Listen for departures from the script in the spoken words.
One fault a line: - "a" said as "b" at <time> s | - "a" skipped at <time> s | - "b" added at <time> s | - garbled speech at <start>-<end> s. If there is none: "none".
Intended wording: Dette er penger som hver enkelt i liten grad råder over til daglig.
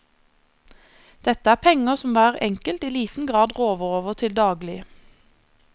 none